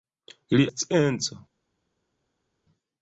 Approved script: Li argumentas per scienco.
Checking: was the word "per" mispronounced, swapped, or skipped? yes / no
yes